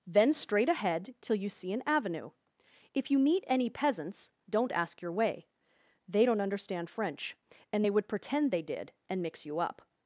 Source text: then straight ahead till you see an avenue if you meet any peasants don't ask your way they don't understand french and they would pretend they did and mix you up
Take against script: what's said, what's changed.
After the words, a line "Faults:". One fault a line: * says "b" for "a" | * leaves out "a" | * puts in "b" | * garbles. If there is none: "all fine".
then straight ahead till you see an avenue if you meet any peasants don't ask your way they don't understand french and they would pretend they did and mix you up
Faults:
all fine